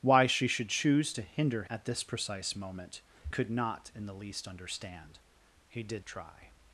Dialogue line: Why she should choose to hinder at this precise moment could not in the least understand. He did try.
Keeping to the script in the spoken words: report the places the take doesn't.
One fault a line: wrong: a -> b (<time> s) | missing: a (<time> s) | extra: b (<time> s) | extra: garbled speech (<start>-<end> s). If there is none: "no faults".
no faults